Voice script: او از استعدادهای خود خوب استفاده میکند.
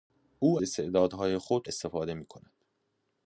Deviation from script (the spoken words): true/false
true